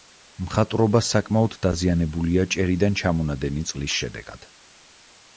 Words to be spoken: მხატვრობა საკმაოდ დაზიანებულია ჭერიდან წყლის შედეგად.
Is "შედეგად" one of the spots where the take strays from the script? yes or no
no